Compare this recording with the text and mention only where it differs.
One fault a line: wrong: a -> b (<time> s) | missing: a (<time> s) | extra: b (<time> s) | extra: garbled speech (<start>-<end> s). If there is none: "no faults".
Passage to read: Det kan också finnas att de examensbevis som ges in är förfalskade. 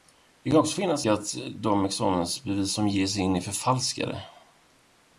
no faults